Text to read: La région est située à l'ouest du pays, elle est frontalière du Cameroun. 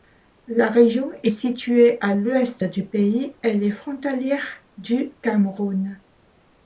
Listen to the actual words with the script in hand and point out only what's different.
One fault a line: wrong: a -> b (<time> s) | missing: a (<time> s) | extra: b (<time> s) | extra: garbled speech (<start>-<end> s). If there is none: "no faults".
no faults